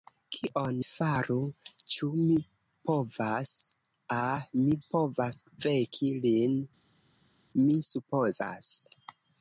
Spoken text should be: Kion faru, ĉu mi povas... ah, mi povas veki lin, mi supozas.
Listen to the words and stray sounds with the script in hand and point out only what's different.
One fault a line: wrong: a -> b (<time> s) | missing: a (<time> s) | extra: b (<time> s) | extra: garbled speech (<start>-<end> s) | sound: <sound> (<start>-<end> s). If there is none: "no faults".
no faults